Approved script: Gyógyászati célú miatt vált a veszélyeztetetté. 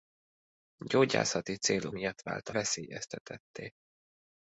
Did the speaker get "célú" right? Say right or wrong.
right